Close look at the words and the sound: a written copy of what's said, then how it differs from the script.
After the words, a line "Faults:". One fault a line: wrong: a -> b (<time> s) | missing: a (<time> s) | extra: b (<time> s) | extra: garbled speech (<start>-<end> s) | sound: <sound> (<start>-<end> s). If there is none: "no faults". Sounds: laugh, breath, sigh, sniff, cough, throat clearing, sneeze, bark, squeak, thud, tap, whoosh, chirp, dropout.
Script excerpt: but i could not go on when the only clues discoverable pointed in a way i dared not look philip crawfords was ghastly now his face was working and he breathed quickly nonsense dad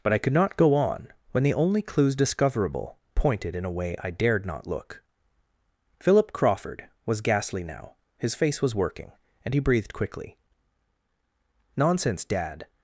but i could not go on when the only clues discoverable pointed in a way i dared not look philip crawford was ghastly now his face was working and he breathed quickly nonsense dad
Faults:
wrong: crawfords -> crawford (6.3 s)